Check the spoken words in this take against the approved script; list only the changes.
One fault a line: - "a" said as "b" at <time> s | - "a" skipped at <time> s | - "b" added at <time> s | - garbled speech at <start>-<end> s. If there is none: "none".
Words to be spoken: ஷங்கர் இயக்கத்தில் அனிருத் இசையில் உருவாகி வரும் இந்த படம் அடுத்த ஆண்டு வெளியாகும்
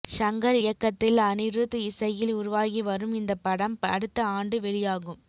none